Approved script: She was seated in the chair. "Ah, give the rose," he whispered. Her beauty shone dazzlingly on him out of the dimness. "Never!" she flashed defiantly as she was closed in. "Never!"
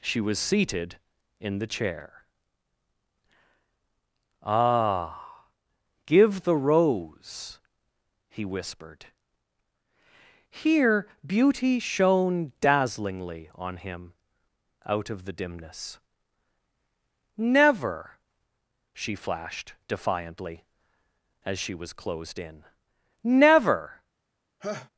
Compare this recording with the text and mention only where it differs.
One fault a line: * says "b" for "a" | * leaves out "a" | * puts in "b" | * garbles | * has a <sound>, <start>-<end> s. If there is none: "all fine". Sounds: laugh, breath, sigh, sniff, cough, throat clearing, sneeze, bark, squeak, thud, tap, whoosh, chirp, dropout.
* says "Here" for "Her"
* has a laugh, 24.6-24.9 s